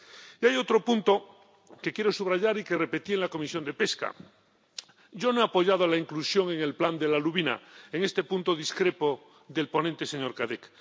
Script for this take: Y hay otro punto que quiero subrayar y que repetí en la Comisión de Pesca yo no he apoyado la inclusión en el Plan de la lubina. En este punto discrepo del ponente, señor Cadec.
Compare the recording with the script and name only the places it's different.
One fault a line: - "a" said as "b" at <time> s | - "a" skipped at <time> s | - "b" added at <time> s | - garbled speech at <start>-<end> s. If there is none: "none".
none